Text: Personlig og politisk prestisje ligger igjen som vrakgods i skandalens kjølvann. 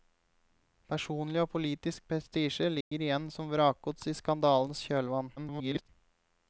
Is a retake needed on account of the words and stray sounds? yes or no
yes